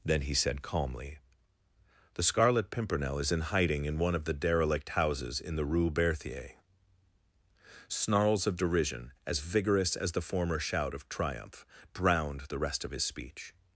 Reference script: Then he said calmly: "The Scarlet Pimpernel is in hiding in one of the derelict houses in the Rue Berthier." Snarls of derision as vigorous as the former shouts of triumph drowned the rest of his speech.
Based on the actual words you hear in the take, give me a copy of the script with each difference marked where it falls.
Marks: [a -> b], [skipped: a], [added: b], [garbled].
Then he said calmly: "The Scarlet Pimpernel is in hiding in one of the derelict houses in the Rue Berthier." Snarls of derision as vigorous as the former [shouts -> shout] of triumph drowned the rest of his speech.